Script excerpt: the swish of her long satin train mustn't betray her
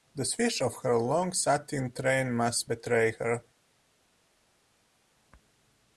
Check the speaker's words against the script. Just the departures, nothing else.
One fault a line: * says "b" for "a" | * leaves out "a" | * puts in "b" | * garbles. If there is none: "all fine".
* says "must" for "mustn't"